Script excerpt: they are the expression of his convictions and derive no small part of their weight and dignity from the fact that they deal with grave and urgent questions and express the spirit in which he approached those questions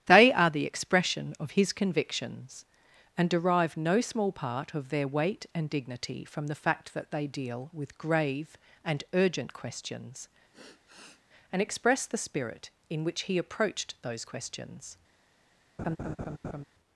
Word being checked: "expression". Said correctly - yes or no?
yes